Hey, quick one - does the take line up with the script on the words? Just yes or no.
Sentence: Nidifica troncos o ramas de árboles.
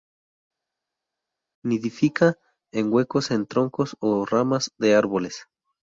no